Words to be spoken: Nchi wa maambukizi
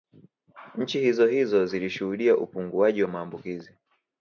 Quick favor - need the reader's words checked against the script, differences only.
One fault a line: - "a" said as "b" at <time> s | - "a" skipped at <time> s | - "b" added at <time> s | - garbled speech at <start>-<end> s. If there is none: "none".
- "hizohizo zilishuhudia upunguaji" added at 1.0 s